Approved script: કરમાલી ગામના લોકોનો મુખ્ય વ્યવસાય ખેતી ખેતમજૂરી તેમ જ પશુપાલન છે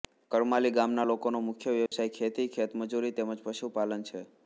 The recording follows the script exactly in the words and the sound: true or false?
false